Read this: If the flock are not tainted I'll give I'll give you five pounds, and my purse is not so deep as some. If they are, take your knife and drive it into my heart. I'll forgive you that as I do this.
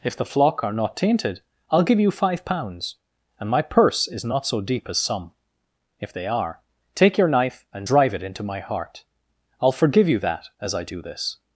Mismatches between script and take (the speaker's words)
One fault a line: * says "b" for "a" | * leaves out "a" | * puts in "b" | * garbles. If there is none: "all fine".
* leaves out "I'll give"